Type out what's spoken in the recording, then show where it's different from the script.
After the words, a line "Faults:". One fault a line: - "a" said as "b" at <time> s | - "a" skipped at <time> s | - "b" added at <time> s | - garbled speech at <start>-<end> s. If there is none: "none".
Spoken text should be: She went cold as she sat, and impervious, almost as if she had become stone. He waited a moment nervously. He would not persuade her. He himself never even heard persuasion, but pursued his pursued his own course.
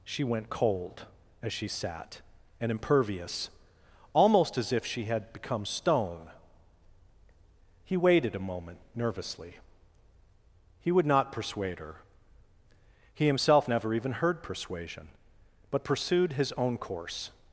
She went cold as she sat, and impervious, almost as if she had become stone. He waited a moment nervously. He would not persuade her. He himself never even heard persuasion, but pursued his own course.
Faults:
- "pursued his" skipped at 16.5 s